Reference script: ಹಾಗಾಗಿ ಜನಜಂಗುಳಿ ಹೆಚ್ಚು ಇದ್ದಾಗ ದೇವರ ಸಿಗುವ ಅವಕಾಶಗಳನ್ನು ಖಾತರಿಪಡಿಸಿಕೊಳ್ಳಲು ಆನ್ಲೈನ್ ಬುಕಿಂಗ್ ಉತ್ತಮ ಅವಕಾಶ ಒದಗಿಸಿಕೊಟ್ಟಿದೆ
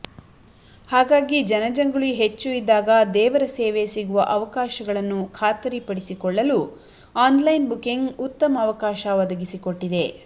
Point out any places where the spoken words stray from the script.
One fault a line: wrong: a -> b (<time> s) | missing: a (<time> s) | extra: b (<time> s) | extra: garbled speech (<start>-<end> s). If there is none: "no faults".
extra: ಸೇವೆ (3.5 s)